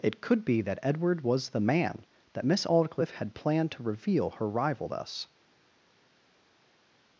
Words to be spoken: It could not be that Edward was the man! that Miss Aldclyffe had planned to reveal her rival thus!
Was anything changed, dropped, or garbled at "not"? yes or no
yes